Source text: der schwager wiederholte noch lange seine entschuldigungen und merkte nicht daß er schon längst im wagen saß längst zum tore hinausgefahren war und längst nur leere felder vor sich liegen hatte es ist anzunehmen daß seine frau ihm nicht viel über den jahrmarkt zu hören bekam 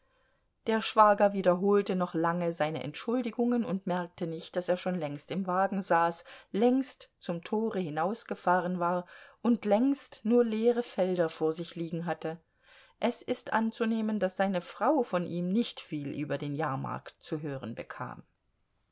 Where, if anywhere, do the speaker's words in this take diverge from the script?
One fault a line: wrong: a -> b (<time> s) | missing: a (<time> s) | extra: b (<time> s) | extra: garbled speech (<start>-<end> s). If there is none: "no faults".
extra: von (15.0 s)